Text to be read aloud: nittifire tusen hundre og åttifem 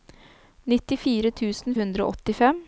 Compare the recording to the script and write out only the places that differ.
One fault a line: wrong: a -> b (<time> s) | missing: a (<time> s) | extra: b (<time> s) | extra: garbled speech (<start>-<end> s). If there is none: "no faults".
no faults